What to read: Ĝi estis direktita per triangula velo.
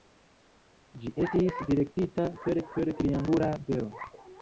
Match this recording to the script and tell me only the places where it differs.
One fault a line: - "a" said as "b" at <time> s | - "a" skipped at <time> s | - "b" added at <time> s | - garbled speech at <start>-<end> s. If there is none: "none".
- "per" added at 2.7 s